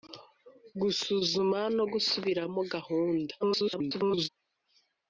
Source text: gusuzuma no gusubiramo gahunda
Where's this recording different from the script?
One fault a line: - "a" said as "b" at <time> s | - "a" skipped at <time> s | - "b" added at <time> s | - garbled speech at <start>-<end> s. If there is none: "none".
- garbled speech at 3.4-4.3 s